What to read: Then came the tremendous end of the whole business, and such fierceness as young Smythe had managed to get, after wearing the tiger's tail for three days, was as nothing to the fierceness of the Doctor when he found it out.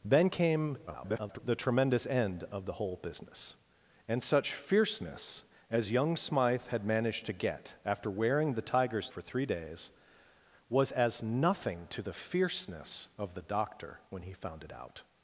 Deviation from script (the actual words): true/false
true